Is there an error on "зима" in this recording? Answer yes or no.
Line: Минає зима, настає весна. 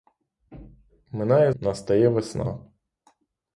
yes